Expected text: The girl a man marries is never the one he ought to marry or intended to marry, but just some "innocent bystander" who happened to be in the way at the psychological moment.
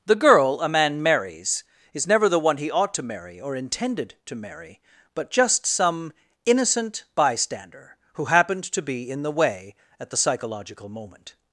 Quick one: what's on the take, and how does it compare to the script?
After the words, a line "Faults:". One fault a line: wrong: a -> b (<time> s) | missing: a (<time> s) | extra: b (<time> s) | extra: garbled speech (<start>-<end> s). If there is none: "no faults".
The girl a man marries is never the one he ought to marry or intended to marry, but just some "innocent bystander" who happened to be in the way at the psychological moment.
Faults:
no faults